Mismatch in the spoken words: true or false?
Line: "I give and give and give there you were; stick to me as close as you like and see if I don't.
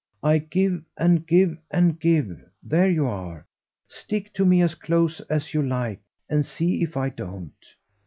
true